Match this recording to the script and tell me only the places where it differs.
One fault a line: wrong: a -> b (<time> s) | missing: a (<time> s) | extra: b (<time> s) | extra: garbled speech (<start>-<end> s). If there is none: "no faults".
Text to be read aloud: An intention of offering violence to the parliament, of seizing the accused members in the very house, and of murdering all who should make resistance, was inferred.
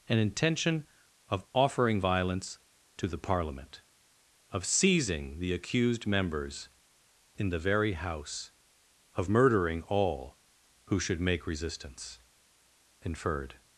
missing: and (8.5 s)
missing: was (12.2 s)